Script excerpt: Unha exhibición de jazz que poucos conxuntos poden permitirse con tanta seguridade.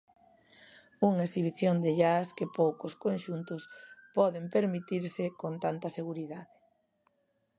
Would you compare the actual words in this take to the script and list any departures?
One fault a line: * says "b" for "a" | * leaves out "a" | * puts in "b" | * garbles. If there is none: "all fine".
all fine